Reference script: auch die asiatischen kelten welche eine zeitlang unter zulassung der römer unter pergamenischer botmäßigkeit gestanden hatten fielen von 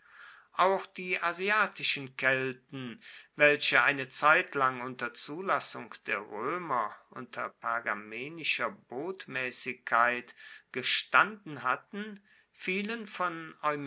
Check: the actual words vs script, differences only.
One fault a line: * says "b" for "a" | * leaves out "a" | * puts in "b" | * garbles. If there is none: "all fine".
all fine